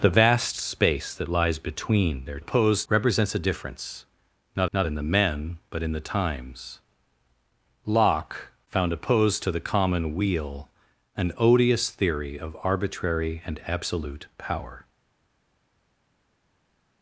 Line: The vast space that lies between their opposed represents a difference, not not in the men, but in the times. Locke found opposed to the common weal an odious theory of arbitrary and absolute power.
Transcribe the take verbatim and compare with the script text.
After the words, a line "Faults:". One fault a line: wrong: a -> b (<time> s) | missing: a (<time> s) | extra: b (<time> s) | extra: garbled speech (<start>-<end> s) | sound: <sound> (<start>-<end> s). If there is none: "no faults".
The vast space that lies between their opposed represents a difference, not not in the men, but in the times. Locke found opposed to the common weal an odious theory of arbitrary and absolute power.
Faults:
no faults